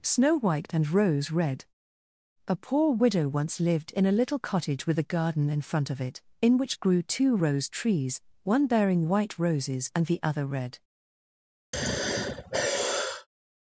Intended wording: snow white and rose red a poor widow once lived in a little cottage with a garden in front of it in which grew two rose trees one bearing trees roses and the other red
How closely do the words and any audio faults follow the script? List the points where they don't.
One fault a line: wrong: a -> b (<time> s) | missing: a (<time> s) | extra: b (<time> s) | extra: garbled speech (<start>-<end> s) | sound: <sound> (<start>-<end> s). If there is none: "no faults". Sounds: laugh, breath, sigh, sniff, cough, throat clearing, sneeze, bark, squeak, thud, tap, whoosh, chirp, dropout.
wrong: trees -> white (9.1 s)
sound: sigh (11.7-13.3 s)